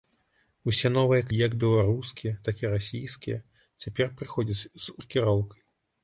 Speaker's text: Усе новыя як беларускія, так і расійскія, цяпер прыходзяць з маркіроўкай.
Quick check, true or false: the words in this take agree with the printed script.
true